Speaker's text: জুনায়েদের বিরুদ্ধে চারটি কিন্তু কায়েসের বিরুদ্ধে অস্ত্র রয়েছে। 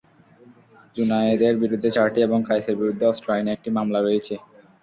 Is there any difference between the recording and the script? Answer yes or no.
yes